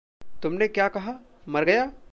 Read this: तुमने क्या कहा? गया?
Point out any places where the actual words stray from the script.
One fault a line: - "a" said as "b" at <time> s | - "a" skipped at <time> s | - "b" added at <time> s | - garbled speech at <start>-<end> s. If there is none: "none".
- "मर" added at 1.5 s